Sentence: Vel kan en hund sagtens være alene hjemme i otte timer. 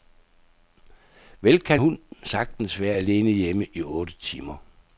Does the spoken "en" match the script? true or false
false